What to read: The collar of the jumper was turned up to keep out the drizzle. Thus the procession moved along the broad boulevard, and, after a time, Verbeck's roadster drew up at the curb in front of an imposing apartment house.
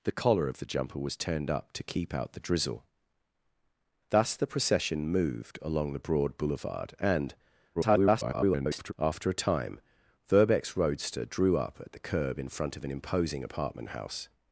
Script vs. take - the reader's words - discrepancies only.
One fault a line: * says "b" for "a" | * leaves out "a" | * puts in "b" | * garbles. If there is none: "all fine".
* garbles